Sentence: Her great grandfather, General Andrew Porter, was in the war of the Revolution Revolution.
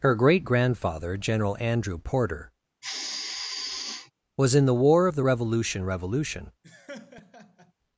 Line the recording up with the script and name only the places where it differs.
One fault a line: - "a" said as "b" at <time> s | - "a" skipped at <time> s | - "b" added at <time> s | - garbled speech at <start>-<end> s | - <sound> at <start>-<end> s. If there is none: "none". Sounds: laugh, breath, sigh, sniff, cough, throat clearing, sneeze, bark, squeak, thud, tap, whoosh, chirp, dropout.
- sigh at 2.8-4.1 s
- laugh at 6.6-7.7 s